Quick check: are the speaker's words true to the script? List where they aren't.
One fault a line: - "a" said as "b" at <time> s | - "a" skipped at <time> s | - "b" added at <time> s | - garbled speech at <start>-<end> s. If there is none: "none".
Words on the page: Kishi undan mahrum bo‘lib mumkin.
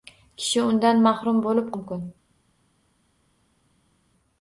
none